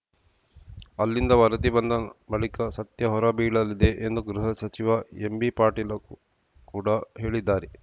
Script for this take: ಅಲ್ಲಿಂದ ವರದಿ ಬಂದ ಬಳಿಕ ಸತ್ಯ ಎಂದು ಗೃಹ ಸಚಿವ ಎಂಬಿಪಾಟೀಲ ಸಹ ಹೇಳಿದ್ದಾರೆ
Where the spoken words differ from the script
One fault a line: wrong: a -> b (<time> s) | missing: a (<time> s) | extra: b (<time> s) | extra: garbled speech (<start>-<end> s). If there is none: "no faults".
extra: ಹೊರಬೀಳಲಿದೆ (3.1 s)
wrong: ಸಹ -> ಕೂಡ (6.7 s)